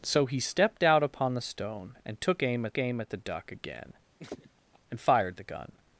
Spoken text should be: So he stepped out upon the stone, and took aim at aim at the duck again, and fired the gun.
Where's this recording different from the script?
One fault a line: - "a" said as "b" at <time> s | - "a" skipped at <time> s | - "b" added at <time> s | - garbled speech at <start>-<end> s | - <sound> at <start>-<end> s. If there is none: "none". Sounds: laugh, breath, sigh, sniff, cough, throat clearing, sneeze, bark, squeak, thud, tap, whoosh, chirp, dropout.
- laugh at 4.2-4.8 s